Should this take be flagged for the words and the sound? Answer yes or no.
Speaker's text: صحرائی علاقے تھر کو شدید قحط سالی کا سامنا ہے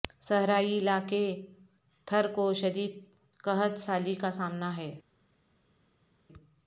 no